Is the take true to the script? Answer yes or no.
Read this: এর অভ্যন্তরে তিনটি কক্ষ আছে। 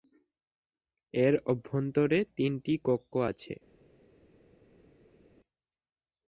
yes